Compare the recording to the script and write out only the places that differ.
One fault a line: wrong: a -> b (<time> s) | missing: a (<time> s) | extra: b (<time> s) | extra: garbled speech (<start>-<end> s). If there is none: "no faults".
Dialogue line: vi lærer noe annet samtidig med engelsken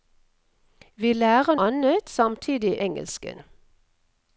missing: noe (1.6 s)
missing: med (2.8 s)